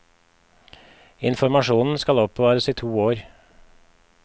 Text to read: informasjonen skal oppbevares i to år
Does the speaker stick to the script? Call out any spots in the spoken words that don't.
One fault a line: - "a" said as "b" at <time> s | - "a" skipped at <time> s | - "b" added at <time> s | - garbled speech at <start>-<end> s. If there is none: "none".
none